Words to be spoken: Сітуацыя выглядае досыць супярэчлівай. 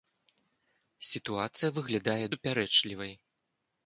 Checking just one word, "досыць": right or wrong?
wrong